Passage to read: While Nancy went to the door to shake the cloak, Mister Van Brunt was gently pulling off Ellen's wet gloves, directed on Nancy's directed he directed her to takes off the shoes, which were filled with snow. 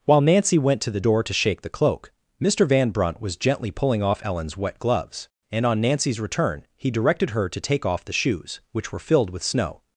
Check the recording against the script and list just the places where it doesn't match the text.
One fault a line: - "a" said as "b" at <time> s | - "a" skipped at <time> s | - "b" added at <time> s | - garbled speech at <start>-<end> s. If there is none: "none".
- "directed" said as "and" at 5.5 s
- "directed" said as "return" at 6.2 s
- "takes" said as "take" at 7.6 s